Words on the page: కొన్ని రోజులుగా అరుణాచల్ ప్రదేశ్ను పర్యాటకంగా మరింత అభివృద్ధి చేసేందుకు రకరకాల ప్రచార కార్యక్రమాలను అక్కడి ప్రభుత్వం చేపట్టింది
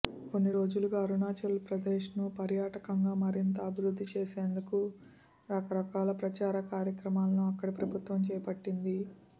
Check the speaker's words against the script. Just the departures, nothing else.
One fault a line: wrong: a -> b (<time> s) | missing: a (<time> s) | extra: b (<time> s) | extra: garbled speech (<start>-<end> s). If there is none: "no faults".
no faults